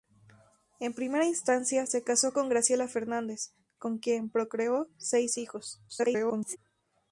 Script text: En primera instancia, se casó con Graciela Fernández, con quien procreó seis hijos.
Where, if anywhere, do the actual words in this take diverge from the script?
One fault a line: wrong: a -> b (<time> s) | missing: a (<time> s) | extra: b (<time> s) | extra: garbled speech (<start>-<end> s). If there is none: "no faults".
extra: garbled speech (5.9-6.6 s)